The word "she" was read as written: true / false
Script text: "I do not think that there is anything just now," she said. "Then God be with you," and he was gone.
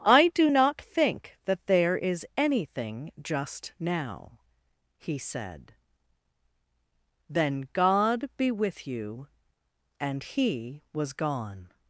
false